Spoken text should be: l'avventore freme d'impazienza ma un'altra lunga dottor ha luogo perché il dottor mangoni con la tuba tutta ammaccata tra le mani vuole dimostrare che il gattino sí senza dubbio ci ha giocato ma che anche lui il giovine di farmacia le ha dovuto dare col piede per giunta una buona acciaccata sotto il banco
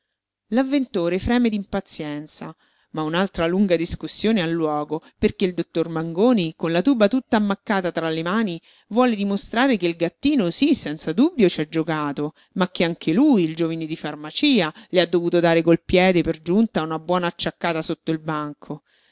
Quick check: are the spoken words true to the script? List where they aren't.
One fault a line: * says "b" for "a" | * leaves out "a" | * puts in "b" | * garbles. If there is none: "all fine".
* says "discussione" for "dottor"